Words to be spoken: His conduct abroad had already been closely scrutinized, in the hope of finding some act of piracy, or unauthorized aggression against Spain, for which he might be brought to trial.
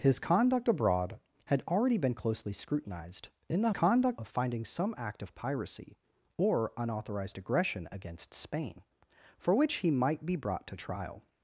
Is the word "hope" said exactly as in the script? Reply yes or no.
no